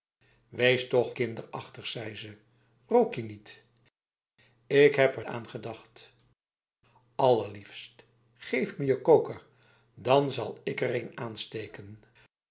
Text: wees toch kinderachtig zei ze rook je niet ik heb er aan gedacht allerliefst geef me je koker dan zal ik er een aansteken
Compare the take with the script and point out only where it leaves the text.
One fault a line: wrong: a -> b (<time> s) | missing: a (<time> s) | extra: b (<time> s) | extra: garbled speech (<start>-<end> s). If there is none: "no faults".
no faults